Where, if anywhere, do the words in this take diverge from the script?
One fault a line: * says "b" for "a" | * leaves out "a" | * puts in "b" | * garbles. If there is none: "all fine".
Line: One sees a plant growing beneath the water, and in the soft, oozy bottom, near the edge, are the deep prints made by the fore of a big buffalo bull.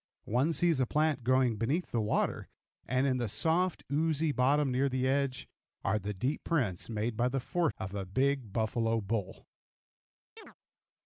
all fine